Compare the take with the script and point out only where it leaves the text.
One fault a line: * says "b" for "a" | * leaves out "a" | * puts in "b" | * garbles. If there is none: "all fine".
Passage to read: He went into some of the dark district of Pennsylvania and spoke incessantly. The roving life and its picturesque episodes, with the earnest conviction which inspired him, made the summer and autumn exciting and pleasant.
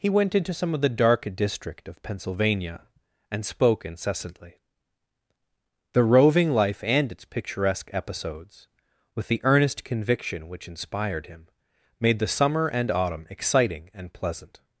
all fine